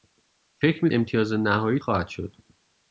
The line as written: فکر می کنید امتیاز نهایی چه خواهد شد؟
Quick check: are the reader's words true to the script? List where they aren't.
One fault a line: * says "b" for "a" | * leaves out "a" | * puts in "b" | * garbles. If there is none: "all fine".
* leaves out "کنید"
* leaves out "چه"